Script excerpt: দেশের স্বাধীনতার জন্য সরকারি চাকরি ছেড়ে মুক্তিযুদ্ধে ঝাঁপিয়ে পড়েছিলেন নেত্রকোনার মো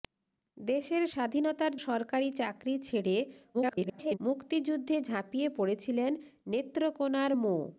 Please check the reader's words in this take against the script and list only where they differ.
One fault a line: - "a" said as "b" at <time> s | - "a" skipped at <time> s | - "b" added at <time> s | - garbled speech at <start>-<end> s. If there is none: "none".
- "জন্য" skipped at 1.7 s
- garbled speech at 3.5-4.2 s